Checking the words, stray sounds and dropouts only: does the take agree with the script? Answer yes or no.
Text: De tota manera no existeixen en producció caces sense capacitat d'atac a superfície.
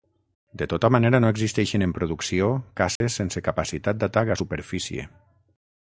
no